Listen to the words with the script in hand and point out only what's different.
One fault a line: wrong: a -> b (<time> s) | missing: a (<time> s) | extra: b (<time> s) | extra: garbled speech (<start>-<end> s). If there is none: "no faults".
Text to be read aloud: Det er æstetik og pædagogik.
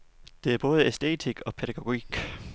extra: både (0.6 s)